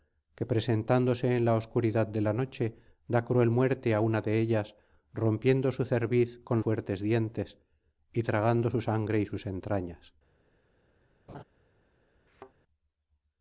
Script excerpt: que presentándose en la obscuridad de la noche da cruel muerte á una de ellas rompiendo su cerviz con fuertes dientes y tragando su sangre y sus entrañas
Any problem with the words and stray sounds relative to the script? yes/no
yes